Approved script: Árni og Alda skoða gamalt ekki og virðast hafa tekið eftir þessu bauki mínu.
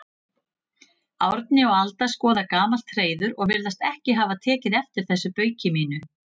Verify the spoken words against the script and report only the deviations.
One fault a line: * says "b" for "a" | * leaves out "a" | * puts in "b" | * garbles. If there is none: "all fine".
* says "hreiður" for "ekki"
* puts in "ekki"